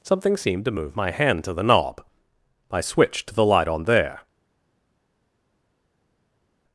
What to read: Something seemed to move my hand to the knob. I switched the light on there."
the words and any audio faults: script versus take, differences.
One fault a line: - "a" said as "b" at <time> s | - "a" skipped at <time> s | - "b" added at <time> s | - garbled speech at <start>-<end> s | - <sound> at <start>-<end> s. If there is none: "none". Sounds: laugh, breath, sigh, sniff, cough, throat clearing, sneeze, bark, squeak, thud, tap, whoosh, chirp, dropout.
none